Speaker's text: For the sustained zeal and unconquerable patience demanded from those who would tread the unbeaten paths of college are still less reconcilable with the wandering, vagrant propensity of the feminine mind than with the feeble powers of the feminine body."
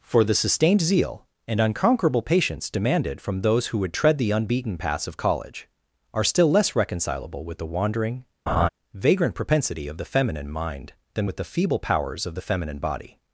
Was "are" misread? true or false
false